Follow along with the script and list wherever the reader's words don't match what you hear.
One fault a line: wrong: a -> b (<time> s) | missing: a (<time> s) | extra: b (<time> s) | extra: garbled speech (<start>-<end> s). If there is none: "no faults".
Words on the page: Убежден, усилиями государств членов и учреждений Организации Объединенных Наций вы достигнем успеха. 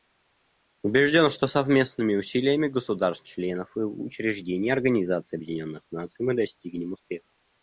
extra: что совместными (1.3 s)
wrong: вы -> мы (6.2 s)